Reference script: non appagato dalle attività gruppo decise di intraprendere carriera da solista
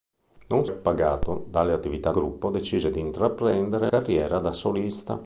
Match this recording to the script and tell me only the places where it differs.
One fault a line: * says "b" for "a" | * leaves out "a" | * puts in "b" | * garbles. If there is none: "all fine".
all fine